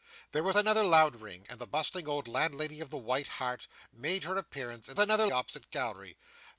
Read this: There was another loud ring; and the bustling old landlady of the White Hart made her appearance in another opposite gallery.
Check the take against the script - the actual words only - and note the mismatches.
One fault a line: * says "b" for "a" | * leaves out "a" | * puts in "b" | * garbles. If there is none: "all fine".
all fine